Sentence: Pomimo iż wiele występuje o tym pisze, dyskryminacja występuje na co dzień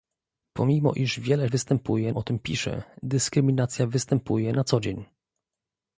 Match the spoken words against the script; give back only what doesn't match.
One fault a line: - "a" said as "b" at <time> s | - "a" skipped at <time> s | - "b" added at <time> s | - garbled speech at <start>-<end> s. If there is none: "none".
none